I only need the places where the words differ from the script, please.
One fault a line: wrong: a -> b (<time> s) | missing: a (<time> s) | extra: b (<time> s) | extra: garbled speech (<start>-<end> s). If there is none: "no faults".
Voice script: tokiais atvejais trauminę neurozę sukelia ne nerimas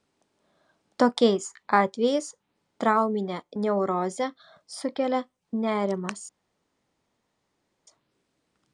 missing: ne (5.2 s)